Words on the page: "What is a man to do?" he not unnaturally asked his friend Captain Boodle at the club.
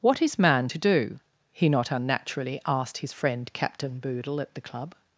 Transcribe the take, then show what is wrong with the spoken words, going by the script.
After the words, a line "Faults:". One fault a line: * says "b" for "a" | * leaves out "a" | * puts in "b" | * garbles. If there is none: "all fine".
"What is man to do?" he not unnaturally asked his friend Captain Boodle at the club.
Faults:
* leaves out "a"